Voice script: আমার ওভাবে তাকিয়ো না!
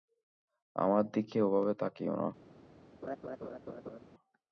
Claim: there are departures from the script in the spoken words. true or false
true